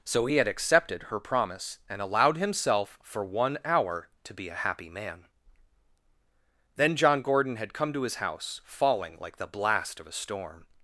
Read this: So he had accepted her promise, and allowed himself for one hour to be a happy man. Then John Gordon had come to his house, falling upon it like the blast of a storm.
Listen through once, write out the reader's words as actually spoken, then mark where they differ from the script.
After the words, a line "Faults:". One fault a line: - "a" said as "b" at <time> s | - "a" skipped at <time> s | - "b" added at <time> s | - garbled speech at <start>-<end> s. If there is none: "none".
So he had accepted her promise, and allowed himself for one hour to be a happy man. Then John Gordon had come to his house, falling like the blast of a storm.
Faults:
- "upon it" skipped at 9.2 s